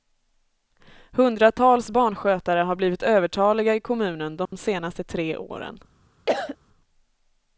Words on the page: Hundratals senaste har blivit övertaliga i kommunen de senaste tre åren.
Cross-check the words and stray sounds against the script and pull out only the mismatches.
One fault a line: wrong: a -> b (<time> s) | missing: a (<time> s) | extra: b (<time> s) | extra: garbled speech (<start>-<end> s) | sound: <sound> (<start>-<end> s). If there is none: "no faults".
wrong: senaste -> barnskötare (1.9 s)
sound: dropout (4.5-4.5 s)
sound: cough (6.3-6.6 s)